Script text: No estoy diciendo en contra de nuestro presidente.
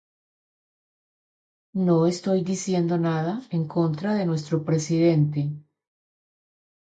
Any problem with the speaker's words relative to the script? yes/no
yes